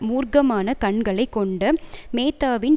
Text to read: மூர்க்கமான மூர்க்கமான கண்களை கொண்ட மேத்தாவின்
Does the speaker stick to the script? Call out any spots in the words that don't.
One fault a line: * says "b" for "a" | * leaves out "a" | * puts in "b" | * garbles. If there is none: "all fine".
* leaves out "மூர்க்கமான"